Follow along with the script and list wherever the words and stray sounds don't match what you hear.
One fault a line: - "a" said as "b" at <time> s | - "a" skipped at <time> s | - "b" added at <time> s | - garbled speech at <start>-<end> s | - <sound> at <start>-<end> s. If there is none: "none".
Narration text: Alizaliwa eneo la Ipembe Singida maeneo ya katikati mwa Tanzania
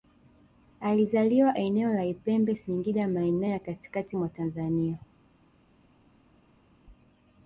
none